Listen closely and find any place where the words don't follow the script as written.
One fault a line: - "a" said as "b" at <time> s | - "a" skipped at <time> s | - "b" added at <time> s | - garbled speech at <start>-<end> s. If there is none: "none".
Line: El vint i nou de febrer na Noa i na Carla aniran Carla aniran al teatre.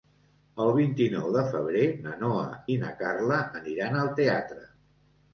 - "Carla aniran" skipped at 4.0 s